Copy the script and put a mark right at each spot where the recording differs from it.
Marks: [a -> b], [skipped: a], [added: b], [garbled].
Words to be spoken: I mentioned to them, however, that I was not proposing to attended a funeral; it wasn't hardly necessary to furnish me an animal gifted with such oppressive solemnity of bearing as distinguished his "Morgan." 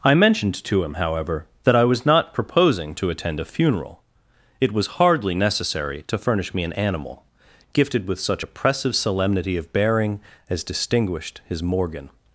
I mentioned to [them, -> him] however, that I was not proposing to [attended -> attend] a funeral; it [wasn't -> was] hardly necessary to furnish me an animal gifted with such oppressive solemnity of bearing as distinguished his "Morgan."